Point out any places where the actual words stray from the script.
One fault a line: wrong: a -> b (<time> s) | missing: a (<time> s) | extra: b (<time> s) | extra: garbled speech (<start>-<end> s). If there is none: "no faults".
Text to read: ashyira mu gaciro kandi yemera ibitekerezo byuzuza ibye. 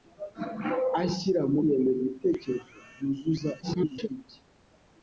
missing: gaciro kandi (1.6 s)
extra: garbled speech (3.6-4.1 s)